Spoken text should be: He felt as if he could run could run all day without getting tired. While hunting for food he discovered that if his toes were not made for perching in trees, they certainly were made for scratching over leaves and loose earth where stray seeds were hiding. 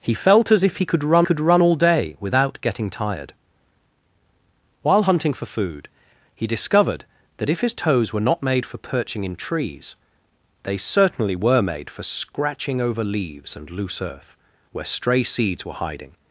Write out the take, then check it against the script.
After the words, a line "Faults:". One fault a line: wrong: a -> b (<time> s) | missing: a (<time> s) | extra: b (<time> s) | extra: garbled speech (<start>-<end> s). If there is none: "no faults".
He felt as if he could run could run all day without getting tired. While hunting for food he discovered that if his toes were not made for perching in trees, they certainly were made for scratching over leaves and loose earth where stray seeds were hiding.
Faults:
no faults